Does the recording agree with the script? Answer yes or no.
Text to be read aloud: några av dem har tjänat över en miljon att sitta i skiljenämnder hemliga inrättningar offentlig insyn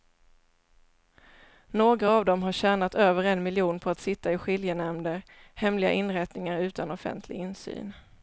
no